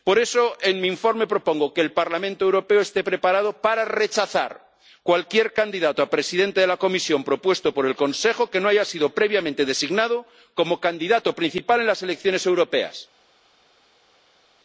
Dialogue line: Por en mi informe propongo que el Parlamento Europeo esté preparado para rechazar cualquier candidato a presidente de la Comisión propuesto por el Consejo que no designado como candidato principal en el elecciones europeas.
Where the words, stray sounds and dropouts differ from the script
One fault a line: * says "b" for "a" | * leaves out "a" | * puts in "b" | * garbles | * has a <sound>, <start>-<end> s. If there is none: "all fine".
* puts in "eso"
* puts in "haya sido previamente"
* says "las" for "el"